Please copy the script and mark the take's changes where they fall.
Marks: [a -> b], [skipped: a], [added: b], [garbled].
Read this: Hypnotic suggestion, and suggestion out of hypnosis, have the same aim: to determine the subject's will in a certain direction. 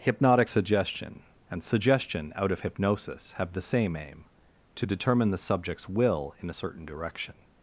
Hypnotic suggestion, and suggestion out of hypnosis, have the same aim: to determine the subject's will in a certain direction.